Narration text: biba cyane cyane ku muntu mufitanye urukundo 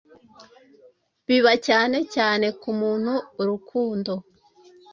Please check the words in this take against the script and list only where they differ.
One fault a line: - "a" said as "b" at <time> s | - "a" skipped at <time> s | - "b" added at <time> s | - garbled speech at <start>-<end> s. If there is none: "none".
- "mufitanye" skipped at 3.1 s